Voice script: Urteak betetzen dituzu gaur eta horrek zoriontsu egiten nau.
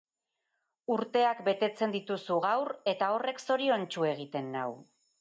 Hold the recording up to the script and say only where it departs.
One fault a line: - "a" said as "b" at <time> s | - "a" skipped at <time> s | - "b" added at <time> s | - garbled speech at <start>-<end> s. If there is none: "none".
none